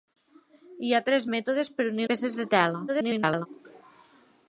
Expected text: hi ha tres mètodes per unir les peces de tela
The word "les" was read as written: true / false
false